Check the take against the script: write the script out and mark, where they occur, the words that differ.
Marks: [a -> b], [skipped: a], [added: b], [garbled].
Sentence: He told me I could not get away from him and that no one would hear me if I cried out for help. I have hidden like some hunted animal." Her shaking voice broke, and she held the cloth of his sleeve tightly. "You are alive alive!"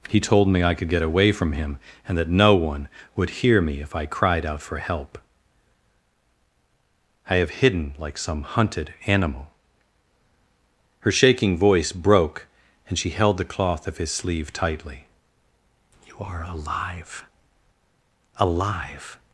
He told me I could [skipped: not] get away from him and that no one would hear me if I cried out for help. I have hidden like some hunted animal." Her shaking voice broke, and she held the cloth of his sleeve tightly. "You are alive alive!"